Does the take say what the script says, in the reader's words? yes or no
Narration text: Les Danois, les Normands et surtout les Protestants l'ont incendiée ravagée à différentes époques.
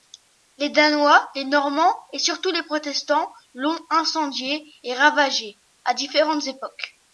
no